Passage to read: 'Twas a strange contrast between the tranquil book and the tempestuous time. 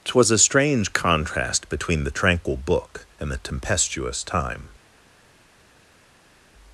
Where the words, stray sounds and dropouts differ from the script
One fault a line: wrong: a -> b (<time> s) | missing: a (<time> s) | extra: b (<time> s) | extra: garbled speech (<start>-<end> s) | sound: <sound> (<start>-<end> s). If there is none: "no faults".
no faults